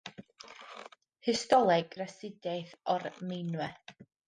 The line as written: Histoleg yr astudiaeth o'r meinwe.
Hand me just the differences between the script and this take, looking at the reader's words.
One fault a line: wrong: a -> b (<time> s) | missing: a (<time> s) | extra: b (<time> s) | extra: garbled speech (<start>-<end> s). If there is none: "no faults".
no faults